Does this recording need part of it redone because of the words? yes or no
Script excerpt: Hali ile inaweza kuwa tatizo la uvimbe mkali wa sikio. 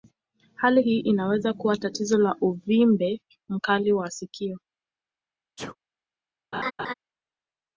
yes